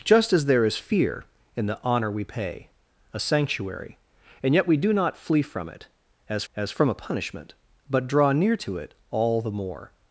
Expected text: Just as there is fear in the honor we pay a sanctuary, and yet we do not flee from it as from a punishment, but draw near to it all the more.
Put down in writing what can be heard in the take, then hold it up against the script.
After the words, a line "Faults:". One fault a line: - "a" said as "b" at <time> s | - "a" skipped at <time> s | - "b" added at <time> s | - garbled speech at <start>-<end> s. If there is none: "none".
Just as there is fear in the honor we pay a sanctuary, and yet we do not flee from it as as from a punishment, but draw near to it all the more.
Faults:
- "as" added at 6.5 s